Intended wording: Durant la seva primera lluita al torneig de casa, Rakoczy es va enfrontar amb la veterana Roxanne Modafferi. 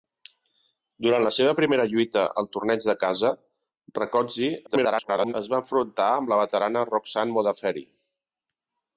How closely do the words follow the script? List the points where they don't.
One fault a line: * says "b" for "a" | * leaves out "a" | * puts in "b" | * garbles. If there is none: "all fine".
* garbles